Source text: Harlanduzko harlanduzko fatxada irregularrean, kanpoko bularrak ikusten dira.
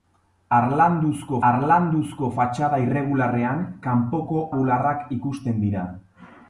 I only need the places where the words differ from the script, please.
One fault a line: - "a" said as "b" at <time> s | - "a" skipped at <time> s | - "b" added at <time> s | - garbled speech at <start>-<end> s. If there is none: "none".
none